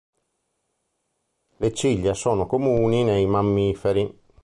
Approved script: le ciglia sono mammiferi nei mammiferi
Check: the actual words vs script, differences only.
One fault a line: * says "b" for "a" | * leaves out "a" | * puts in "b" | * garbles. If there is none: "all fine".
* says "comuni" for "mammiferi"